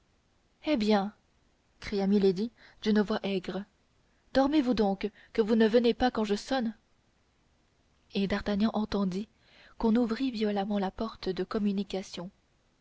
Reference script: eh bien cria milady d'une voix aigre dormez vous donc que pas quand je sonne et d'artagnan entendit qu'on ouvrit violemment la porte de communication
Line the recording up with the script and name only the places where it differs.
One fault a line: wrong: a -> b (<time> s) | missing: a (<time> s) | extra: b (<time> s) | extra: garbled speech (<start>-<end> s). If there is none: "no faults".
extra: vous ne venez (5.4 s)